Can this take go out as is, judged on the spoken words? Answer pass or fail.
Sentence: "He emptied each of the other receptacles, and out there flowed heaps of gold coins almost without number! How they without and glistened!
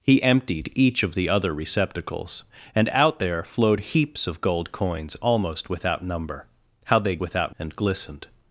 pass